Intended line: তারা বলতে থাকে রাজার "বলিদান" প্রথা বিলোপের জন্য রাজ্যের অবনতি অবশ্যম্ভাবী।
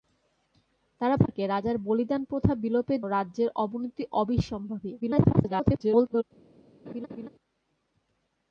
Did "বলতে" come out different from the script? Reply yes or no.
yes